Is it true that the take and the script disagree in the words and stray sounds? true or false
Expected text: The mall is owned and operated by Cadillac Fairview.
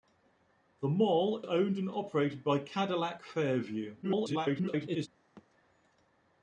true